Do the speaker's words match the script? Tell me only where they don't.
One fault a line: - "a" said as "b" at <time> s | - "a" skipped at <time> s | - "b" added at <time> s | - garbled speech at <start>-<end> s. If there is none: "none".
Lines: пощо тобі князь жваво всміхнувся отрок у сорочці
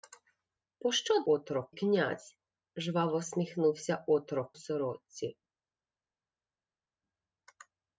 - "тобі" said as "отрок" at 1.3 s
- "у" skipped at 4.5 s